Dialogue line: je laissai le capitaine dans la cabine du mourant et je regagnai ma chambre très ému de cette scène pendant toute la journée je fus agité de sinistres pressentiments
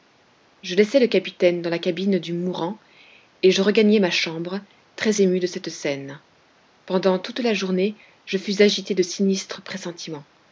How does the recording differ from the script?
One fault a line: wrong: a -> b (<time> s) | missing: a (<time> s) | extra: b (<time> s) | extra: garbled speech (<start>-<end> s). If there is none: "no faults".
no faults